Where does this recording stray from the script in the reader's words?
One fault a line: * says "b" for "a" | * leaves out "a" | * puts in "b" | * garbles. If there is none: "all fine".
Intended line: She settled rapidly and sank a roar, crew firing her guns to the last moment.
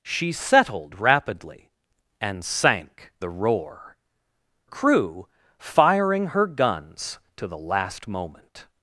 all fine